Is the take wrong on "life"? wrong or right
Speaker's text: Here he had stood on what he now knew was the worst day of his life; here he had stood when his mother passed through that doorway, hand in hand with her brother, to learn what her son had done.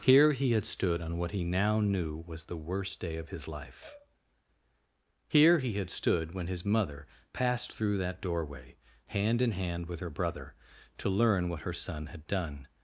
right